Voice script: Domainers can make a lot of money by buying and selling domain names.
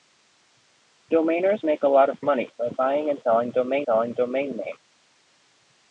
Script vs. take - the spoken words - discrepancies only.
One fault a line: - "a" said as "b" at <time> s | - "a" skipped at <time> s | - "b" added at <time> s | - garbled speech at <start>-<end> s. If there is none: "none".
- "can" skipped at 1.6 s
- "selling domain" added at 3.8 s